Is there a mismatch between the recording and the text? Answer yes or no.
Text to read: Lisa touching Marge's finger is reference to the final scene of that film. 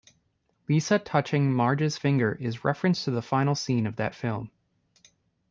no